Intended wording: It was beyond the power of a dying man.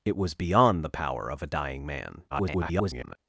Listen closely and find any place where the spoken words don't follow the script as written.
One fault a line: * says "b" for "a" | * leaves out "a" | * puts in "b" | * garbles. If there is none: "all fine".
* garbles